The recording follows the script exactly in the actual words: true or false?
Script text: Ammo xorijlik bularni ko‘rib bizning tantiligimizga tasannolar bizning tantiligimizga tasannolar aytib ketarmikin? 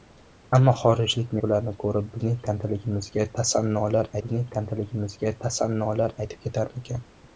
true